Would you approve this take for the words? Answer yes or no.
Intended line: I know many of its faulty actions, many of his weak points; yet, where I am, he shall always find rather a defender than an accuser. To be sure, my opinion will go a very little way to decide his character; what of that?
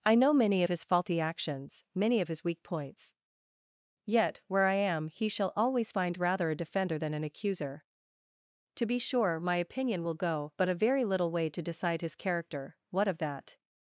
no